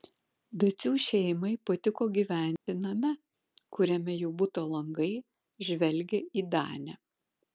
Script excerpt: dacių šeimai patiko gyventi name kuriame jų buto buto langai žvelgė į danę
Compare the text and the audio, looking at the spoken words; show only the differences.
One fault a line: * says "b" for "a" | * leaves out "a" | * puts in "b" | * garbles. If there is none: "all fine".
* leaves out "buto"